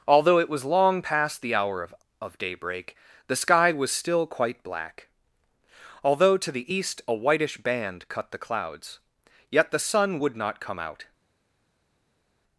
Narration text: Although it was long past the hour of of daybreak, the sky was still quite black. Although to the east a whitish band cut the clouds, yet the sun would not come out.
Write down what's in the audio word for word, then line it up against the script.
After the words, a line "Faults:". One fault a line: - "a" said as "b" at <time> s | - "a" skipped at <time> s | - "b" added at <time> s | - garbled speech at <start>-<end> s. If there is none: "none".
Although it was long past the hour of of daybreak, the sky was still quite black. Although to the east a whitish band cut the clouds, yet the sun would not come out.
Faults:
none